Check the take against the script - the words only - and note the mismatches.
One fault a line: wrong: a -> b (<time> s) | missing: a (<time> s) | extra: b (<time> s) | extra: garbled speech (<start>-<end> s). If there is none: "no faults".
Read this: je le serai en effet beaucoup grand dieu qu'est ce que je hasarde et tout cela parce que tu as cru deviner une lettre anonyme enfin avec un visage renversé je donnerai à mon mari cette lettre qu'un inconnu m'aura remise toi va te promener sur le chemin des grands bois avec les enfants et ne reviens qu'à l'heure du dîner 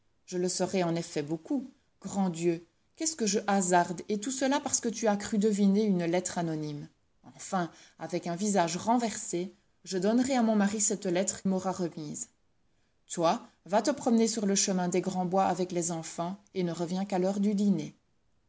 missing: qu'un inconnu (11.4 s)